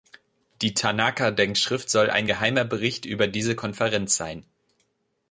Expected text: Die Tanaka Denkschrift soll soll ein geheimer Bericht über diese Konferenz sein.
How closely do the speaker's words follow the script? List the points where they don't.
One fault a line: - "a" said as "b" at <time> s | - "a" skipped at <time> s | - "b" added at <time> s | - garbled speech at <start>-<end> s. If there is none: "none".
- "soll" skipped at 2.1 s